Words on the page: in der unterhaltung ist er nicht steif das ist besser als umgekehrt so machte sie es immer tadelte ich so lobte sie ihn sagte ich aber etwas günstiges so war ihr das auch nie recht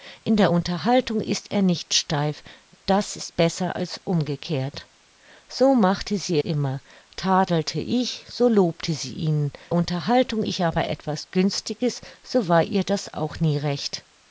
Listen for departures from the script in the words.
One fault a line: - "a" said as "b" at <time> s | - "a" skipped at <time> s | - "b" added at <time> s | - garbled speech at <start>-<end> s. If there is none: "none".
- "es" skipped at 6.4 s
- "sagte" said as "unterhaltung" at 9.7 s